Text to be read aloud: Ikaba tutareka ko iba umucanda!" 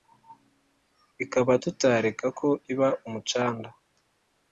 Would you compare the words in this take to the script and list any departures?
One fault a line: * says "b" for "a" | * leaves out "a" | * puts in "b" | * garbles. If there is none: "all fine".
all fine